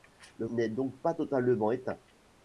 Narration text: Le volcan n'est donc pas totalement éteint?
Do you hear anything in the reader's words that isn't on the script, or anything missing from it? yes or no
yes